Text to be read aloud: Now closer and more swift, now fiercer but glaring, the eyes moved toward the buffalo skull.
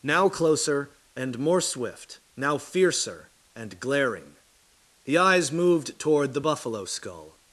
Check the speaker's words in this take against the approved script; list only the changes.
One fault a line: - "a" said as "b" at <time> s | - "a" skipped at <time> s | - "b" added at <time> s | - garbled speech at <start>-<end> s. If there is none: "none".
- "but" said as "and" at 3.5 s